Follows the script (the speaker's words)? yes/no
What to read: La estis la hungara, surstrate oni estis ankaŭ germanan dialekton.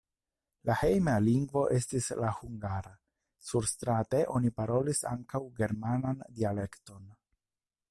no